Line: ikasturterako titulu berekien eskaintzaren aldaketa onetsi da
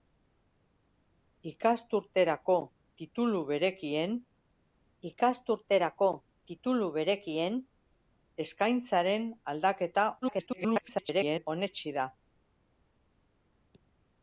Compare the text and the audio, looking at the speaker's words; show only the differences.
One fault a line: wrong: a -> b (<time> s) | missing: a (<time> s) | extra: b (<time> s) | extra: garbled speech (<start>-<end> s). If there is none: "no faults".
extra: ikasturterako titulu berekien (5.1 s)
extra: garbled speech (10.2-11.5 s)